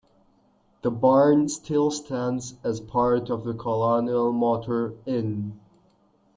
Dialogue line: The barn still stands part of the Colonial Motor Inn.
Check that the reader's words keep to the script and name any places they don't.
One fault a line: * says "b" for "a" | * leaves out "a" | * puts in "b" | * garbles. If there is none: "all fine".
* puts in "as"